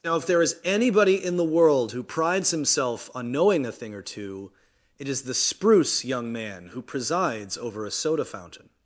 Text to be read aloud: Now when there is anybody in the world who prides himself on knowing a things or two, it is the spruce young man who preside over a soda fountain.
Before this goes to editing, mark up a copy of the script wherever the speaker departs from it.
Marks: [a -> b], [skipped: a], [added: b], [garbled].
Now [when -> if] there is anybody in the world who prides himself on knowing a [things -> thing] or two, it is the spruce young man who [preside -> presides] over a soda fountain.